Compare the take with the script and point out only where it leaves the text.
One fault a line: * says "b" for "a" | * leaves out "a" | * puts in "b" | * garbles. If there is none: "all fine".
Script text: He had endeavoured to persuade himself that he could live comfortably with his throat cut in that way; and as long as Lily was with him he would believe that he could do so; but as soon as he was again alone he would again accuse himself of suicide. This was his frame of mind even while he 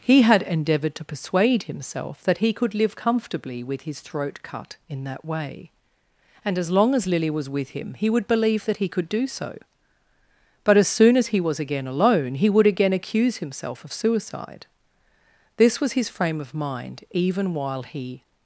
all fine